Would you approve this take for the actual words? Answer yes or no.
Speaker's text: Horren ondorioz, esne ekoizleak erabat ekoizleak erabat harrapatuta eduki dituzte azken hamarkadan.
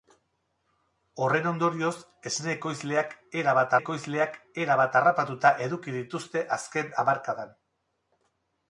yes